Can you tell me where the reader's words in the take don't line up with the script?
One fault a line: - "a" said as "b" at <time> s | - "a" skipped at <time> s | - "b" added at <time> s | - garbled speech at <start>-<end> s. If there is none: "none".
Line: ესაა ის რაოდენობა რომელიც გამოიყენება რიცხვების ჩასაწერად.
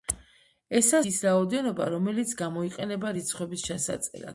none